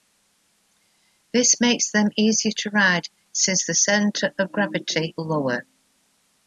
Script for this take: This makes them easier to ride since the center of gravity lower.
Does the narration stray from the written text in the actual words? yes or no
no